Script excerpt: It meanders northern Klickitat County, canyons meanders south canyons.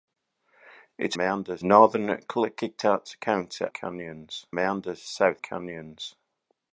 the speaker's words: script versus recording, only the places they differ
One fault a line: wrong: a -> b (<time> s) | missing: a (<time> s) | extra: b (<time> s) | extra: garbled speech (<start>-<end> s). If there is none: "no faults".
no faults